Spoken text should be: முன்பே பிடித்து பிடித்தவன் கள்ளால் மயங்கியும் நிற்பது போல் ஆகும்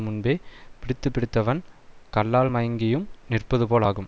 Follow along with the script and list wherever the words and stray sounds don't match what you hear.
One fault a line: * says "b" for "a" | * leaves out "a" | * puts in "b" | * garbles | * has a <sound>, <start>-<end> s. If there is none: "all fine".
all fine